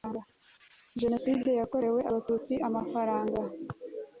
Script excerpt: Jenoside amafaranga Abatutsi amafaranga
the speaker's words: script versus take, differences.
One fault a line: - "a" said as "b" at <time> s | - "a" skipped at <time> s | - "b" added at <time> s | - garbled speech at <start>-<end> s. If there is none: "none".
- "amafaranga" said as "yakorewe" at 1.6 s